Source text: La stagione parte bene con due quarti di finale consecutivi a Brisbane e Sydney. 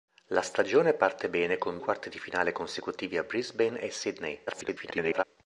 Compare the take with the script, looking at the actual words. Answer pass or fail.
fail